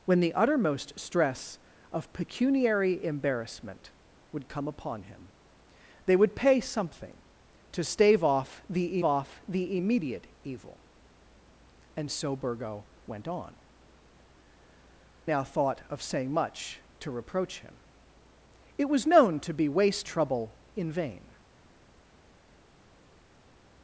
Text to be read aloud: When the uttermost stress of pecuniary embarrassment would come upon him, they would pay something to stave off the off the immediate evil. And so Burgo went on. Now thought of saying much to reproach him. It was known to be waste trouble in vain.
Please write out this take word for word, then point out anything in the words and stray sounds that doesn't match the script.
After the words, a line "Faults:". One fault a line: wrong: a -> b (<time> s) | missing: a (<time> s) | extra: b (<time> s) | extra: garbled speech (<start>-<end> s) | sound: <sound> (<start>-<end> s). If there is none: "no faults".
When the uttermost stress of pecuniary embarrassment would come upon him, they would pay something to stave off the off the immediate evil. And so Burgo went on. Now thought of saying much to reproach him. It was known to be waste trouble in vain.
Faults:
no faults